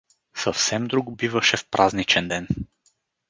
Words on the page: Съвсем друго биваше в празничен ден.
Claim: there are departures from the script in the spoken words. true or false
false